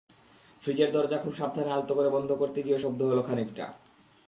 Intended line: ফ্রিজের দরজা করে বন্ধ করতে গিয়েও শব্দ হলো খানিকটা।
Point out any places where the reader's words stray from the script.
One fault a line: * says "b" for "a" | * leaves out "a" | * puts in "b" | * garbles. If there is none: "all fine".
* puts in "খুব সাবধানে আলতো"